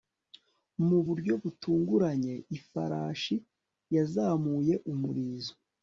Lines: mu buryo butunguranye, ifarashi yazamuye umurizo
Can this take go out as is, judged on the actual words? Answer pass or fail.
pass